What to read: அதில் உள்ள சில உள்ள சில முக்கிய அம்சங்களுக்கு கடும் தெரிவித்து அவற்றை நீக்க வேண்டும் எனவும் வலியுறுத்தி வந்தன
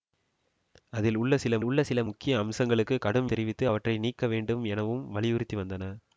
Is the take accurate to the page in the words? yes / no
yes